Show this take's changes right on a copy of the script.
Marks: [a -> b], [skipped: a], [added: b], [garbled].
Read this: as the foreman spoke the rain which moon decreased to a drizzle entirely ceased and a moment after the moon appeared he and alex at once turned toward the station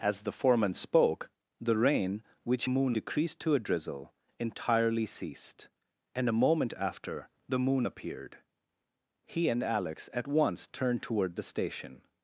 as the foreman spoke the rain which moon decreased to a drizzle entirely ceased and a moment after the moon appeared he and alex at once turned toward the station